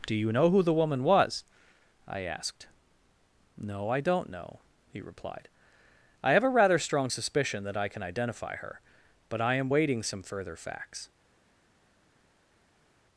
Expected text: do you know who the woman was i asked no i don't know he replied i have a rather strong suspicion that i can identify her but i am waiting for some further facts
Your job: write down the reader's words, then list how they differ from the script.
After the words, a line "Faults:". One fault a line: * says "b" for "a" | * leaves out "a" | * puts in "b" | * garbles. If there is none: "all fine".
do you know who the woman was i asked no i don't know he replied i have a rather strong suspicion that i can identify her but i am waiting some further facts
Faults:
* leaves out "for"